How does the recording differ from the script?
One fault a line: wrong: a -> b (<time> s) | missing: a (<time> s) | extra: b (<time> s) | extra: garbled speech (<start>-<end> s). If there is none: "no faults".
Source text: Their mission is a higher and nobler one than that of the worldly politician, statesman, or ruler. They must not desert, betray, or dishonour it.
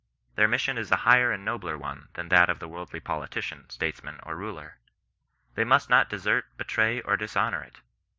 no faults